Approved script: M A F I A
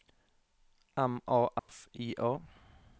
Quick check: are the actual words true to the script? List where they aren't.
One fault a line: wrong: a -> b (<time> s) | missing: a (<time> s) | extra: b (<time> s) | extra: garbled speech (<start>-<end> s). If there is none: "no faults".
no faults